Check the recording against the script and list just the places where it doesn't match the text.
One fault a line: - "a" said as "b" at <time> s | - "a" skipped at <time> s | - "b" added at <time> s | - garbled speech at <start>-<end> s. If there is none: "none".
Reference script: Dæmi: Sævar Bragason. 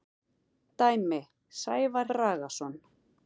none